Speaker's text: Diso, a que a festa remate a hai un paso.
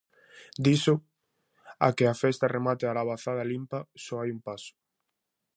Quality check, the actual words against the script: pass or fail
fail